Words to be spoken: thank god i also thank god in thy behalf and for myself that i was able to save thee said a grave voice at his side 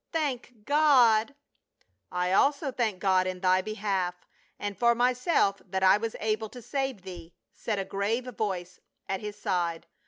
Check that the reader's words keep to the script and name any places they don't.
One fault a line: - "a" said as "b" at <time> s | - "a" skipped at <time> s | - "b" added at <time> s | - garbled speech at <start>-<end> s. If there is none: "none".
none